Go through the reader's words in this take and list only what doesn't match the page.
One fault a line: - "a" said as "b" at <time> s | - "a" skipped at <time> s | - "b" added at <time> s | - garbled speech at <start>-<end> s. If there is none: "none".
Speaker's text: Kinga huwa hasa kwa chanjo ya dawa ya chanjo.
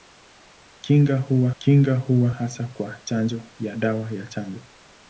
- "kinga huwa" added at 1.6 s